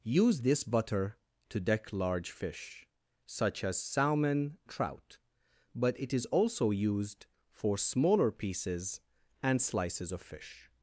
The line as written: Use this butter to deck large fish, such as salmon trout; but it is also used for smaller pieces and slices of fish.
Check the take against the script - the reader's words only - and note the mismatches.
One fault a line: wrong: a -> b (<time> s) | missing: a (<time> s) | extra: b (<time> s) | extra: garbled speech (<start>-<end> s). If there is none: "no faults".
no faults